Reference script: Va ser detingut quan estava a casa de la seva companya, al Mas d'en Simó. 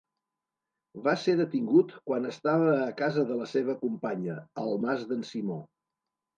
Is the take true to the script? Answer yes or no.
yes